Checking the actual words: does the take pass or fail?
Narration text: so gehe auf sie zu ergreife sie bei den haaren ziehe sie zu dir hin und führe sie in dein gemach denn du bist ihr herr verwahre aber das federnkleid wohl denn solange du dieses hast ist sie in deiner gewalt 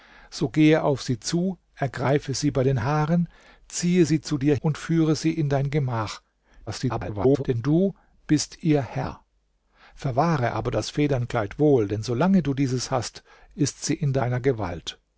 fail